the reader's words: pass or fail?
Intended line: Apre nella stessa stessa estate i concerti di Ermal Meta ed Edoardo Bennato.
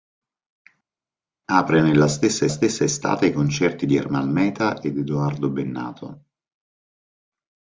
pass